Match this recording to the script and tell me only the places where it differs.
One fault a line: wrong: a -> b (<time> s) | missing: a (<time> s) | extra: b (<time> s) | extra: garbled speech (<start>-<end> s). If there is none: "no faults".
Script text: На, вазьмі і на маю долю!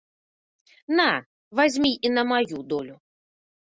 no faults